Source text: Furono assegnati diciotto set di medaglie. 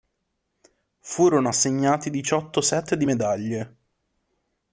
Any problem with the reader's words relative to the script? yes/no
no